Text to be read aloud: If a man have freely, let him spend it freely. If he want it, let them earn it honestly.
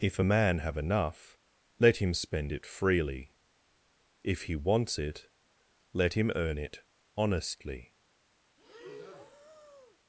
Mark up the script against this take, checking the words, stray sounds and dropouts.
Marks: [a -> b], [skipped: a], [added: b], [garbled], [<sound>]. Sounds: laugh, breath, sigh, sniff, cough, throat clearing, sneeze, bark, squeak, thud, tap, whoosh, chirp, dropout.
If a man have [freely, -> enough] let him spend it freely. If he [want -> wants] it, let [them -> him] earn it honestly. [breath]